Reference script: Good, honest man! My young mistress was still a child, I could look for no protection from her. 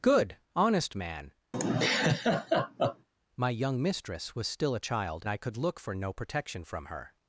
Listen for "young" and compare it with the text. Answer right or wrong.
right